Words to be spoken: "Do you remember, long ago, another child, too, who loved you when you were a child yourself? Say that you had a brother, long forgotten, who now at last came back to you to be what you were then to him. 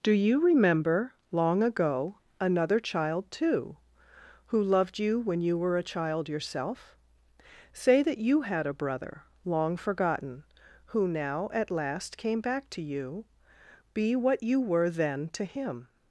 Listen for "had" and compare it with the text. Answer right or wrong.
right